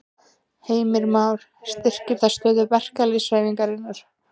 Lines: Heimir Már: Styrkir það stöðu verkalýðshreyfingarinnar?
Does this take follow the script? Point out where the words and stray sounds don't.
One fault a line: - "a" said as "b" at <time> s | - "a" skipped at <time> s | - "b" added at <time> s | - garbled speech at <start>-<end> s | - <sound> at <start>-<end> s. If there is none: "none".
none